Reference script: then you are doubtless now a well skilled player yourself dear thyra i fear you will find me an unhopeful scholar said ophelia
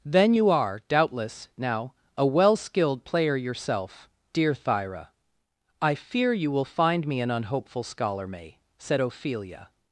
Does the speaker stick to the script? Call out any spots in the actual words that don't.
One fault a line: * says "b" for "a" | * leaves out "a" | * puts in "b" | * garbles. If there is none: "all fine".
* puts in "may"